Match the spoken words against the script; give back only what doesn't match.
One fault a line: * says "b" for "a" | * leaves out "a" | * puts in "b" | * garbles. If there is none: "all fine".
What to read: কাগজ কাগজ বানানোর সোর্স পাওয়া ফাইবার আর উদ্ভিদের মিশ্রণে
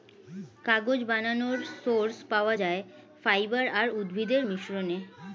* leaves out "কাগজ"
* puts in "যায়"